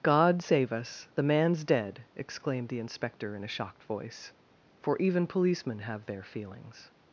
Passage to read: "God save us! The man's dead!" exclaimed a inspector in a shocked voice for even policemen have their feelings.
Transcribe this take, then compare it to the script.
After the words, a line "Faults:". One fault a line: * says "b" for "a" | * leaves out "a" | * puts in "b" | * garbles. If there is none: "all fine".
"God save us! The man's dead!" exclaimed the inspector in a shocked voice for even policemen have their feelings.
Faults:
* says "the" for "a"